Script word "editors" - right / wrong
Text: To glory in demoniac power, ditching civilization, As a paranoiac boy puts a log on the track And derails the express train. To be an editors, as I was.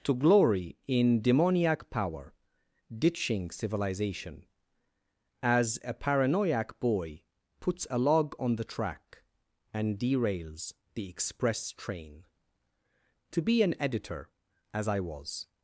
wrong